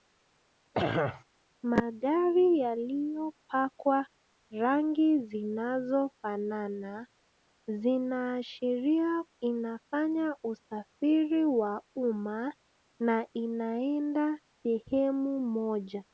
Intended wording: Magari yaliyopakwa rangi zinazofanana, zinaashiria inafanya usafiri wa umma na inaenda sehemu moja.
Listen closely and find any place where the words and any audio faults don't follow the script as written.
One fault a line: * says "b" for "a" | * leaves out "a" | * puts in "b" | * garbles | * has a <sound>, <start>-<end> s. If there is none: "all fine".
* has a throat clearing, 0.7-1.2 s